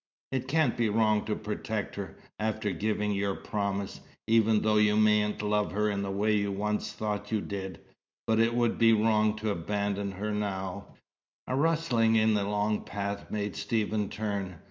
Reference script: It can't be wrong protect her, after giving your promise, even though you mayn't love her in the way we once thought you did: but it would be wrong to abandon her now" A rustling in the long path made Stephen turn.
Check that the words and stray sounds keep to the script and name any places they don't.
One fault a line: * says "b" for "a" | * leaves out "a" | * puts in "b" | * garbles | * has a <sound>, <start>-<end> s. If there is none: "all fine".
* puts in "to"
* says "you" for "we"